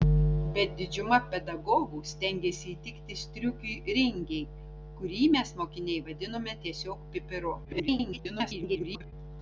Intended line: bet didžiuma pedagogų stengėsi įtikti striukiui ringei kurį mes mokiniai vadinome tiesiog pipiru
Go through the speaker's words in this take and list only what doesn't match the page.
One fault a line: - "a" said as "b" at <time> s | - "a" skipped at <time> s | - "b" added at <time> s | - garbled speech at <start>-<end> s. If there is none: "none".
- garbled speech at 7.6-9.1 s